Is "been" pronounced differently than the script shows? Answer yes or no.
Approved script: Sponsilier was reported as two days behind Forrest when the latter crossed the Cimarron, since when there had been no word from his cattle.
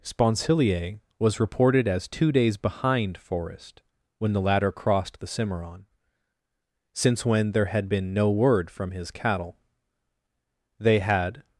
no